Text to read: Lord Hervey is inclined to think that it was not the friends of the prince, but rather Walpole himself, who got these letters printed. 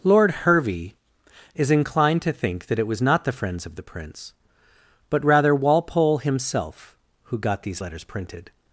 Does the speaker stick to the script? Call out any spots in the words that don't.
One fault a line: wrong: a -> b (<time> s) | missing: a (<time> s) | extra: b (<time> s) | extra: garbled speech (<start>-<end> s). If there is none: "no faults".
no faults